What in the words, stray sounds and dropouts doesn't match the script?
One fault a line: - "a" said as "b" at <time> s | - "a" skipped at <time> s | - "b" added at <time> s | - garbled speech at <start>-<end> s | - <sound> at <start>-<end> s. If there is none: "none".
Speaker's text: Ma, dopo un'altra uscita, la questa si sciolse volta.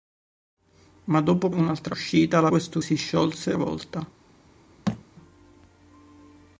- thud at 4.9-5.0 s